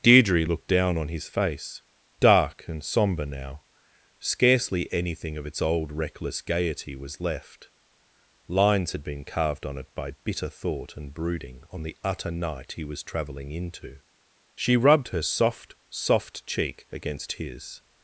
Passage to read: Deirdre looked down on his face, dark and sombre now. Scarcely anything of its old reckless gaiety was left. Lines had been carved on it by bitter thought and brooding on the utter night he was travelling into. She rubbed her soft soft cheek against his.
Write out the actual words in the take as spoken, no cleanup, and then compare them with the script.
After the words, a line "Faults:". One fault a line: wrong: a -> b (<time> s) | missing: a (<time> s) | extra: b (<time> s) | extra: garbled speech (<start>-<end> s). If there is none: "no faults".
Deirdre looked down on his face, dark and sombre now. Scarcely anything of its old reckless gaiety was left. Lines had been carved on it by bitter thought and brooding on the utter night he was travelling into. She rubbed her soft soft cheek against his.
Faults:
no faults